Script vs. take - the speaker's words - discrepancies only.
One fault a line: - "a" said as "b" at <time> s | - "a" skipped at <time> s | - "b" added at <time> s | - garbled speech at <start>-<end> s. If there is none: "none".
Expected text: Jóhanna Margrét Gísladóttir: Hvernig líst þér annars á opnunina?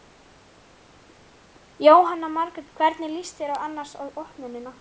- "Gísladóttir" skipped at 2.7 s